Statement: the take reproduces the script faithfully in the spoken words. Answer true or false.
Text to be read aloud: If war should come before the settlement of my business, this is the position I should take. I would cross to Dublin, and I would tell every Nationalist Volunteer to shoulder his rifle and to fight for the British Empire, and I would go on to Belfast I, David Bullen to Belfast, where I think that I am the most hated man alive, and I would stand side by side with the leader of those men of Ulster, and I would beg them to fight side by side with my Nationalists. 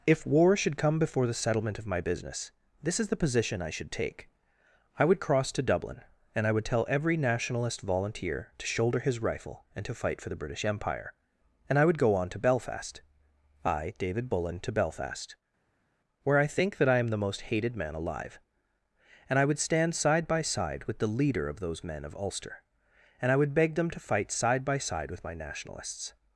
true